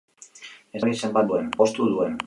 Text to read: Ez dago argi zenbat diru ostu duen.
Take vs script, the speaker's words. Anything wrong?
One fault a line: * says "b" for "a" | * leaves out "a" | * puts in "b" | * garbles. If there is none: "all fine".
* leaves out "dago"
* says "duen" for "diru"